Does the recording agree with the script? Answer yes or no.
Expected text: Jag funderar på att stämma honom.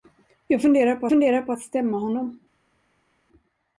no